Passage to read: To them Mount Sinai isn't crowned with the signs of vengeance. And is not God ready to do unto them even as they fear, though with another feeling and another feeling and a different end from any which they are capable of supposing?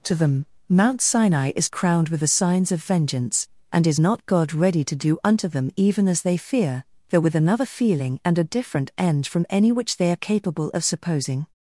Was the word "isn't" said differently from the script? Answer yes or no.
yes